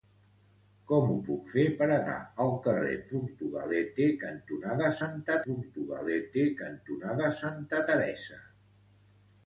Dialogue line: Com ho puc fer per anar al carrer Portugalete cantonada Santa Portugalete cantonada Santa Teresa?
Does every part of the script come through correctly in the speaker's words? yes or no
yes